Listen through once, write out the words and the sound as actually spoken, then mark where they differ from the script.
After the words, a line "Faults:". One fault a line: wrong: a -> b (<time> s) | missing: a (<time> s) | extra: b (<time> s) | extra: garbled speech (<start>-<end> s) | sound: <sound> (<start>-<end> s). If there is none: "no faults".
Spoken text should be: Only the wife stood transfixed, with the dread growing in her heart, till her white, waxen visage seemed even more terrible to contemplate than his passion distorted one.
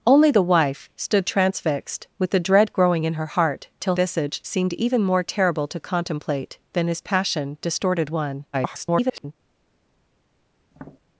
Only the wife stood transfixed, with the dread growing in her heart, till visage seemed even more terrible to contemplate than his passion distorted one. [garbled]
Faults:
missing: her white waxen (4.0 s)
extra: garbled speech (8.5-9.3 s)
sound: tap (10.7-11.0 s)